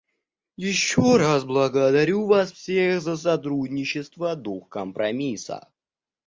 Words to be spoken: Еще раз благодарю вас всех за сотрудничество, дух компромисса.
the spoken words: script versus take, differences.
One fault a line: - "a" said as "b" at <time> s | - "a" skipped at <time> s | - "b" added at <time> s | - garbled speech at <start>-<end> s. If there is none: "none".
none